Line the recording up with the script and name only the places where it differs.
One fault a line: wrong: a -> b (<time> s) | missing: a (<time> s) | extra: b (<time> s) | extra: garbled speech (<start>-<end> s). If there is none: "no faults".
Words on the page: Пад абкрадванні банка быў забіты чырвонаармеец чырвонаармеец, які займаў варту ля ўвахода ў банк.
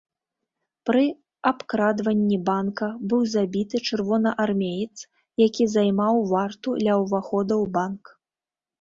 wrong: Пад -> Пры (0.9 s)
missing: чырвонаармеец (5.0 s)